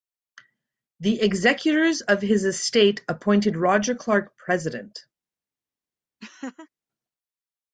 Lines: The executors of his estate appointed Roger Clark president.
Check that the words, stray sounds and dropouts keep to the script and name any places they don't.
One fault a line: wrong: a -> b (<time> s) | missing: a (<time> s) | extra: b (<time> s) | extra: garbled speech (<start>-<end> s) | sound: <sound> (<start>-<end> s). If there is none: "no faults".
sound: laugh (6.2-6.7 s)